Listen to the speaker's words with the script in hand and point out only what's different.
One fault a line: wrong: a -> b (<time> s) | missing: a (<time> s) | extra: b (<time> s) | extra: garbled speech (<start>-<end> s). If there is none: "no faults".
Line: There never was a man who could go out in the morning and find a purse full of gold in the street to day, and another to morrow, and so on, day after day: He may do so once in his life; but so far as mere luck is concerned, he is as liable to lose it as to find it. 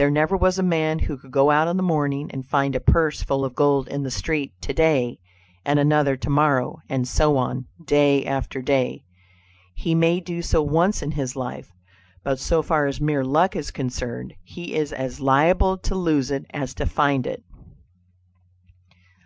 no faults